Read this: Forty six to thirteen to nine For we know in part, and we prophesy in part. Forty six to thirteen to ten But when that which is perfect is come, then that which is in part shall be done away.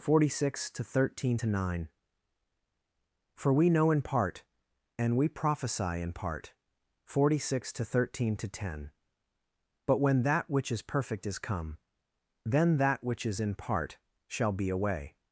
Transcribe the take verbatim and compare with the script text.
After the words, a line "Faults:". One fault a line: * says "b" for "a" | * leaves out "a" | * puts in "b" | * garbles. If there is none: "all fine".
Forty six to thirteen to nine For we know in part, and we prophesy in part. Forty six to thirteen to ten But when that which is perfect is come, then that which is in part shall be away.
Faults:
* leaves out "done"